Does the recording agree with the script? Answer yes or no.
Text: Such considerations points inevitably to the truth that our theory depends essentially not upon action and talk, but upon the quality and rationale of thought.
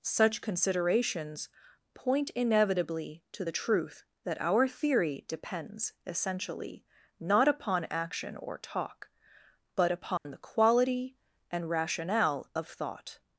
no